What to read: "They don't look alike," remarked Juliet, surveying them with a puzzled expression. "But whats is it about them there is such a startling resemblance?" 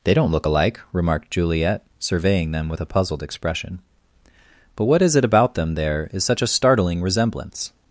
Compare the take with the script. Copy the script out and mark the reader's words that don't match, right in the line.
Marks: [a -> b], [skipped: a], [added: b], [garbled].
"They don't look alike," remarked Juliet, surveying them with a puzzled expression. "But [whats -> what] is it about them there is such a startling resemblance?"